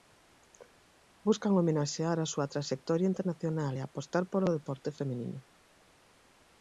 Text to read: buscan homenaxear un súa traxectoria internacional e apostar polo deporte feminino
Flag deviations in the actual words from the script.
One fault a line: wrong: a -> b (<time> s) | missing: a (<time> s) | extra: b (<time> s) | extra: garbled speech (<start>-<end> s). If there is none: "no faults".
wrong: un -> a (2.2 s)